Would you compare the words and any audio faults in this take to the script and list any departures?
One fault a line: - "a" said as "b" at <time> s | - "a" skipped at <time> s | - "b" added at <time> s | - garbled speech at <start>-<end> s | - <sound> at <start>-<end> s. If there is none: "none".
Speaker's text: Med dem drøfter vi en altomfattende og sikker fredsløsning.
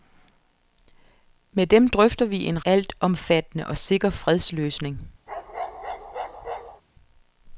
- bark at 5.3-6.8 s